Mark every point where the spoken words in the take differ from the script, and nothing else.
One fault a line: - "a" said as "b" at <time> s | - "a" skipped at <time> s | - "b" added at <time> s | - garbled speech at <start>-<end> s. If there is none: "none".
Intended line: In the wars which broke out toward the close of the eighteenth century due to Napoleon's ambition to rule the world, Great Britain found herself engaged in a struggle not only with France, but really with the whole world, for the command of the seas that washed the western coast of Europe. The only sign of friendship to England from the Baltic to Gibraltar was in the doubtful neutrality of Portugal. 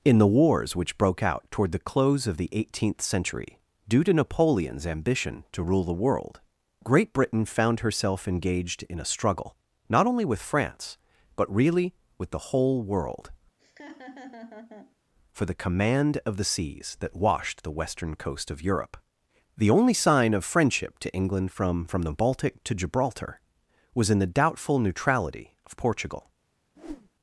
- "from" added at 21.8 s